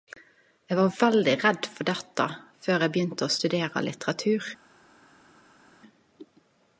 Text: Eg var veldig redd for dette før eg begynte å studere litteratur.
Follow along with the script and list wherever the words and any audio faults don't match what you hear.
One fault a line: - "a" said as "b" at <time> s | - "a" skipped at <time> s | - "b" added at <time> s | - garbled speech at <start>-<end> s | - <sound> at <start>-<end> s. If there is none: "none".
none